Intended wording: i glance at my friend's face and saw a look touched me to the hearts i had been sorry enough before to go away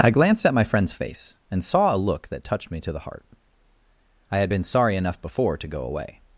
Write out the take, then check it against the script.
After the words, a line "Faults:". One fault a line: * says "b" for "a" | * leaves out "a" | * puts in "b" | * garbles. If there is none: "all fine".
i glanced at my friend's face and saw a look that touched me to the heart i had been sorry enough before to go away
Faults:
* says "glanced" for "glance"
* puts in "that"
* says "heart" for "hearts"